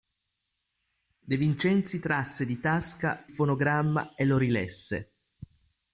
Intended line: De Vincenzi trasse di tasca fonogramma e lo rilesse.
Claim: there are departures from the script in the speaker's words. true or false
false